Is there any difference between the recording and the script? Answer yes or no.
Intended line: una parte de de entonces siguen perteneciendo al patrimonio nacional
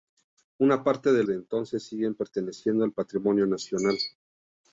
no